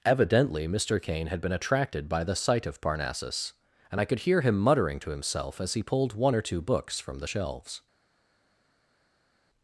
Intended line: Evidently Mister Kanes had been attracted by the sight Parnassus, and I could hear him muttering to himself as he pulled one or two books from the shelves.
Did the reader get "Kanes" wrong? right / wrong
wrong